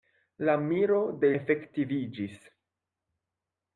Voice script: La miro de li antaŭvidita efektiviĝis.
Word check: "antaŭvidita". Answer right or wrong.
wrong